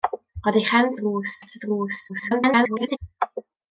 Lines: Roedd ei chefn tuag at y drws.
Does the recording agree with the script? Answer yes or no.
no